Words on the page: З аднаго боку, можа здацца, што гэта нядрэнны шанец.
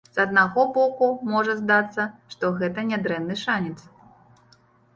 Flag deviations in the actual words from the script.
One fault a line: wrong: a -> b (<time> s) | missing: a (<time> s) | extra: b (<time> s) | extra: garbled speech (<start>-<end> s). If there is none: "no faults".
no faults